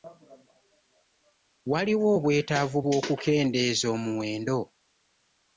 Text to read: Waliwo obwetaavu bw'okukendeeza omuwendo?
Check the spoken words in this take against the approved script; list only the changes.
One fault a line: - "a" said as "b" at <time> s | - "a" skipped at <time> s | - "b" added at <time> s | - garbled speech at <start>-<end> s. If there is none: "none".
none